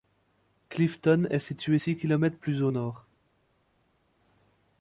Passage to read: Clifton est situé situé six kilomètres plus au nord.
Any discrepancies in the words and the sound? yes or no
yes